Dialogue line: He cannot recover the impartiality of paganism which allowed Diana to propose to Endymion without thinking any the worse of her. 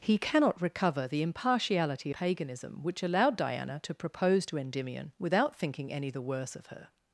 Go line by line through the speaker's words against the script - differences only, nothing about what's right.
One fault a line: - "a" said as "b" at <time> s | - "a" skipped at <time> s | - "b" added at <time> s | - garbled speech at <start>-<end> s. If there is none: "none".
- "of" skipped at 2.1 s